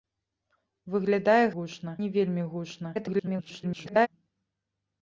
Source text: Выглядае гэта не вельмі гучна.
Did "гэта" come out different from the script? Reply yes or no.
yes